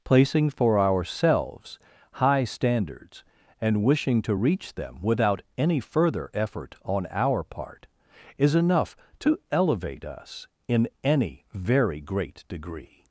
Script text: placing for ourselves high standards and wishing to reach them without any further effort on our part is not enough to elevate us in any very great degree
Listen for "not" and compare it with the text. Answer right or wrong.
wrong